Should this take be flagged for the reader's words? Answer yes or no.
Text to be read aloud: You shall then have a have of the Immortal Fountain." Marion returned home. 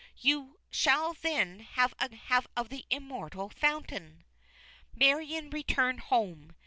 no